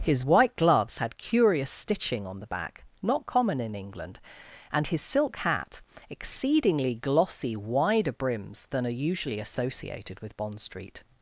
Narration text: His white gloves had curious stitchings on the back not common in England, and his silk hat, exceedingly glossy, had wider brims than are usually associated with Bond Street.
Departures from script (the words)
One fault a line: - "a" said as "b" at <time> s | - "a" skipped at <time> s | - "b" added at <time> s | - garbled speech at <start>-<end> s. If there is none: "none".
- "stitchings" said as "stitching" at 1.7 s
- "had" skipped at 7.6 s